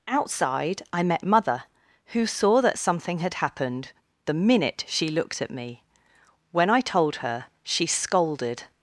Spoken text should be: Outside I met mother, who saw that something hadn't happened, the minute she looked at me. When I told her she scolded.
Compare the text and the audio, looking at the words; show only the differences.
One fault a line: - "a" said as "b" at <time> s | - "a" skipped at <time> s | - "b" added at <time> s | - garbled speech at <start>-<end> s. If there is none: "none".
- "hadn't" said as "had" at 3.2 s